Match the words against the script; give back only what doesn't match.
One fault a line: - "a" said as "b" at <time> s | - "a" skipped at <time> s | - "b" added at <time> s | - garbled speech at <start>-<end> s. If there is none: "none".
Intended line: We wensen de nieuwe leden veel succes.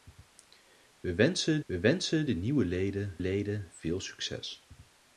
- "we wensen" added at 1.6 s
- "leden" added at 3.2 s